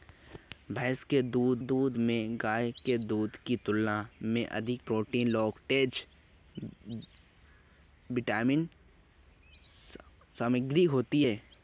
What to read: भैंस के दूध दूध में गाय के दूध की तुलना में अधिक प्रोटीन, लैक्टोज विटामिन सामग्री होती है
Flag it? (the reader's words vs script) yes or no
no